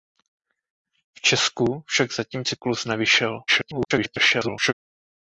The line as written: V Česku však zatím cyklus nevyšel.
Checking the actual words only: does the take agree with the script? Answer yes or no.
no